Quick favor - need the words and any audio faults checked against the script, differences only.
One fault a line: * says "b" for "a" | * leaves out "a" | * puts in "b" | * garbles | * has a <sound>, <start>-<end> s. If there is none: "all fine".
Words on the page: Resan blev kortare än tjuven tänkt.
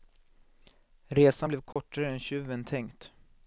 * has a dropout, 1.7-1.8 s